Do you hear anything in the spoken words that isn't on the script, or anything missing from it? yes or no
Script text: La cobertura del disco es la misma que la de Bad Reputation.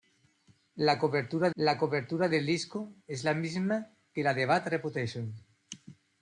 yes